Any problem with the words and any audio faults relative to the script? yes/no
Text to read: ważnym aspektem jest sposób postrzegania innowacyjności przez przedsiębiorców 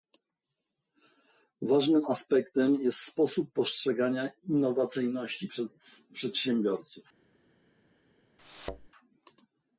yes